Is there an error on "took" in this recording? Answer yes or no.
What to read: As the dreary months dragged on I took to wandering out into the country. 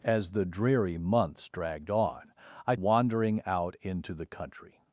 yes